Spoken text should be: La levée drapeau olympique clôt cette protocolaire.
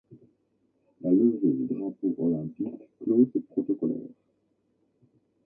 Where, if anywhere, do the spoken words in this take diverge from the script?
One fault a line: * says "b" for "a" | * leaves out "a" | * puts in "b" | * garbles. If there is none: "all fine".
all fine